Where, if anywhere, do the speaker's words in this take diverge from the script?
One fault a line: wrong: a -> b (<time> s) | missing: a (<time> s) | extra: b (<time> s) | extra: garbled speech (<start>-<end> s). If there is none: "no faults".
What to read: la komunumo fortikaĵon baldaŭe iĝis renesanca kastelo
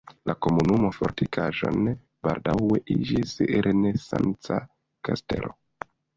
no faults